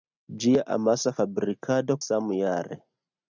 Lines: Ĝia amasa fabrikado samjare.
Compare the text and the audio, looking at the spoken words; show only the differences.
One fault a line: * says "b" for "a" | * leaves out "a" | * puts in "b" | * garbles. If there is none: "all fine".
all fine